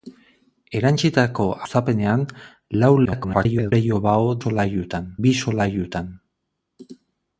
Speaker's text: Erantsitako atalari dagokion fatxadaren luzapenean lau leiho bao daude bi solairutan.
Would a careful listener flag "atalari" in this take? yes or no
yes